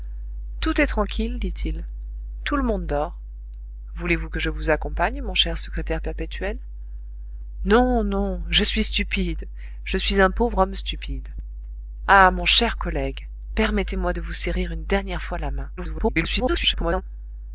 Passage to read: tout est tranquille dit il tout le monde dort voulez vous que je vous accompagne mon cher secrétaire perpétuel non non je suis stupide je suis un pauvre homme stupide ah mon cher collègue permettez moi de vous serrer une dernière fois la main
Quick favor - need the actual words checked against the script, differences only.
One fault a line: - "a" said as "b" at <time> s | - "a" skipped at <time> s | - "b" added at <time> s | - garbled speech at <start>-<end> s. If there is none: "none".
- garbled speech at 15.8-17.0 s